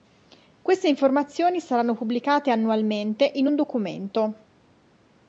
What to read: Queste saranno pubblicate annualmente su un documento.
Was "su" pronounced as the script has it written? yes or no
no